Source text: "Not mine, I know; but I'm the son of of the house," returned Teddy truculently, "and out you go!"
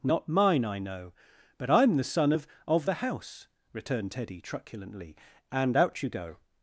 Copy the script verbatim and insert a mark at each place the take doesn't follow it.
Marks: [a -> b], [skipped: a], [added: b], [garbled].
"Not mine, I know; but I'm the son of of the house," returned Teddy truculently, "and out you go!"